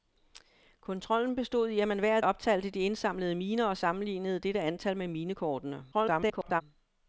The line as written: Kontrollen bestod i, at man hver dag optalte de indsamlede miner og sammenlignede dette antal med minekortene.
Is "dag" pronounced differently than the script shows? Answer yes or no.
yes